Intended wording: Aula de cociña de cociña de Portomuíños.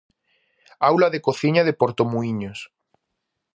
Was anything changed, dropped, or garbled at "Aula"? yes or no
no